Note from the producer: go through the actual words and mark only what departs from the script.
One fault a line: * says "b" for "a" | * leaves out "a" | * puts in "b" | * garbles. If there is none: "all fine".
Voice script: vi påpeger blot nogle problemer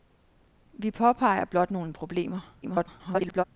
* garbles